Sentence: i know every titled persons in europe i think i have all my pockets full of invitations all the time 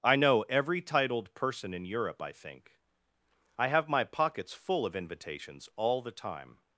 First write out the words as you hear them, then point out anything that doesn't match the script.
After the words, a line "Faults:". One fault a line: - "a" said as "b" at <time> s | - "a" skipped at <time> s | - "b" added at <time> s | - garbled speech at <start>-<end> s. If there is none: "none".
i know every titled person in europe i think i have my pockets full of invitations all the time
Faults:
- "persons" said as "person" at 1.4 s
- "all" skipped at 3.9 s